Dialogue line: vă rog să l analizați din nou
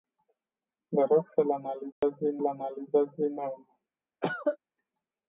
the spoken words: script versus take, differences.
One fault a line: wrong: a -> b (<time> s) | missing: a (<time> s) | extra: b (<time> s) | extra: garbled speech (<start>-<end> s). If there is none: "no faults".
extra: l analizați din (2.4 s)